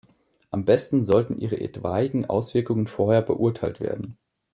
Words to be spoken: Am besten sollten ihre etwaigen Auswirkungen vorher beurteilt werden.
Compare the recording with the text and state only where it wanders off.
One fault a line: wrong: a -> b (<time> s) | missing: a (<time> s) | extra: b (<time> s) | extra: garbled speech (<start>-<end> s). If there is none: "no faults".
no faults